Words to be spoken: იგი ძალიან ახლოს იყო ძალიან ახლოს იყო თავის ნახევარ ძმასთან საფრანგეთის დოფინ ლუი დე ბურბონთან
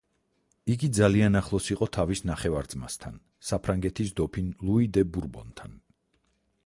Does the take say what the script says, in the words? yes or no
no